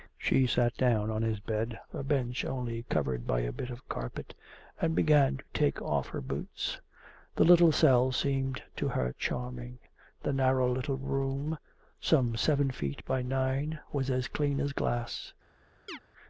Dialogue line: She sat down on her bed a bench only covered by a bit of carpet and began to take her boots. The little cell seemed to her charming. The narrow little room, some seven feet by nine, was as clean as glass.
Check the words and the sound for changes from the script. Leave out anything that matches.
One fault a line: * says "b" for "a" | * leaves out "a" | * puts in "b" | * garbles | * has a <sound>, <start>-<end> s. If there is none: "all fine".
* says "his" for "her"
* puts in "off"
* has a chirp, 15.9-16.0 s